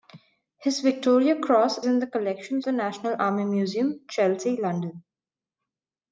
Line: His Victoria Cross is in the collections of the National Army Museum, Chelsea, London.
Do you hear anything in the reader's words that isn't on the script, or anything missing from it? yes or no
yes